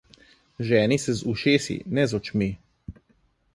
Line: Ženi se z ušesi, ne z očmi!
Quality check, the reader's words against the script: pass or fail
pass